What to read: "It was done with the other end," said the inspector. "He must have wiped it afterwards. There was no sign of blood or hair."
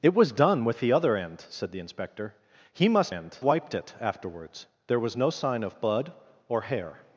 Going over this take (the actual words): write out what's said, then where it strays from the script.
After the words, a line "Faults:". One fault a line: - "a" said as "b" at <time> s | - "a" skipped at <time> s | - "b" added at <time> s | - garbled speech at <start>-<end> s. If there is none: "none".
"It was done with the other end," said the inspector. "He must end wiped it afterwards. There was no sign of blood or hair."
Faults:
- "have" said as "end" at 3.1 s